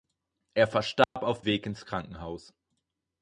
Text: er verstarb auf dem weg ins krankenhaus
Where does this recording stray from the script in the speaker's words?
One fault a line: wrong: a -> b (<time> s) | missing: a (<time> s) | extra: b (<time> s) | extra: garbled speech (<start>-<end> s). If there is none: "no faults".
missing: dem (1.4 s)